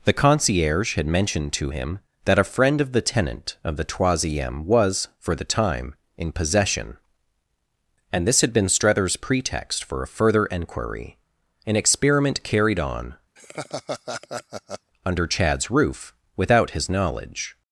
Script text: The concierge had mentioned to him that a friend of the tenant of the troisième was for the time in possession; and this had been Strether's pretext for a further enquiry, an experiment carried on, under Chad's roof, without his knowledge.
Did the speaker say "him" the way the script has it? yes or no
yes